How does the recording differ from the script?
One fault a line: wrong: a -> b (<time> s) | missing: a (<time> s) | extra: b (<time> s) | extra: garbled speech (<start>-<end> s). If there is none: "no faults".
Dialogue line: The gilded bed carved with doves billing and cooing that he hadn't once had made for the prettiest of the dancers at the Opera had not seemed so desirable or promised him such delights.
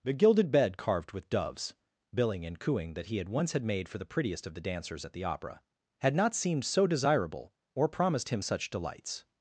wrong: hadn't -> had (3.2 s)